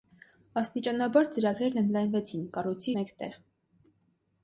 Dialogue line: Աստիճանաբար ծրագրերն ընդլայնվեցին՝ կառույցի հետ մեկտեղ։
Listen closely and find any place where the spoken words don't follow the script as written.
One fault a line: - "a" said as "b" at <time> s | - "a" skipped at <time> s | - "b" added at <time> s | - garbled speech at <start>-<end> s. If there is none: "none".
- "հետ" skipped at 2.9 s